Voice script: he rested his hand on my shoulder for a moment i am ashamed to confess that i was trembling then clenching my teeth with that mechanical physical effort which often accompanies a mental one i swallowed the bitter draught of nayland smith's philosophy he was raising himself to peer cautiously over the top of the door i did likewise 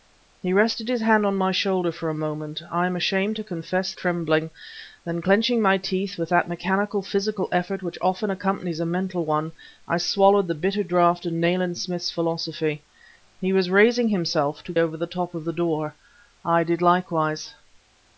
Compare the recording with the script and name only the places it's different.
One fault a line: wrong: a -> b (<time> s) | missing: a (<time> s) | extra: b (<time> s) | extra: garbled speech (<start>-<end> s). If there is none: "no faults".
missing: that i was (3.9 s)
missing: peer cautiously (14.7 s)